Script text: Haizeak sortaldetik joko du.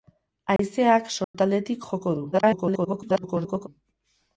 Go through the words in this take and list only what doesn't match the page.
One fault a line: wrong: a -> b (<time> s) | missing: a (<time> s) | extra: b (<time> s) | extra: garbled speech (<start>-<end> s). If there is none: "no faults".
extra: garbled speech (2.3-3.7 s)